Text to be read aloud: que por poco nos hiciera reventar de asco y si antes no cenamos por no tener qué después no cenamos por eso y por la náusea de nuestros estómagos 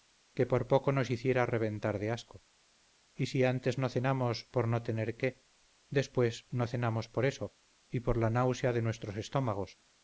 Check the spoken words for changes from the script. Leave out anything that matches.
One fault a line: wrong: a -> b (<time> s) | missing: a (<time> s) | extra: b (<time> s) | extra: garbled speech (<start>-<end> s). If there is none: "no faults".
no faults